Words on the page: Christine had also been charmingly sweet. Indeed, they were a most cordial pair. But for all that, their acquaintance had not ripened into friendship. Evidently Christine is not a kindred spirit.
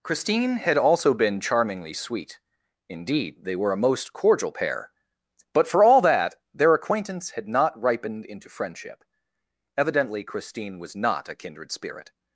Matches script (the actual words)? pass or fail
fail